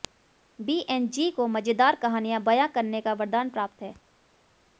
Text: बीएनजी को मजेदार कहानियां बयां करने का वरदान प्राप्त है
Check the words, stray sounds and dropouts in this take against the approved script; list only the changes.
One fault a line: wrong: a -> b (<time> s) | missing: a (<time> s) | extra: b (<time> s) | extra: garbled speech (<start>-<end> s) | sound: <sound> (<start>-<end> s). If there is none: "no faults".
no faults